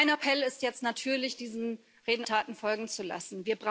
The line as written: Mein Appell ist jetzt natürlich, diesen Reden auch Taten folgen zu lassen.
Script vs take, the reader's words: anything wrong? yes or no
yes